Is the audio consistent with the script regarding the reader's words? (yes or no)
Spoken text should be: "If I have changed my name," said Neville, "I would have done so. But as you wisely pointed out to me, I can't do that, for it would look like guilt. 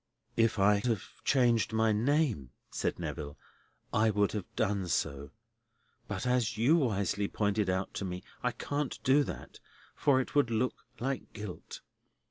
yes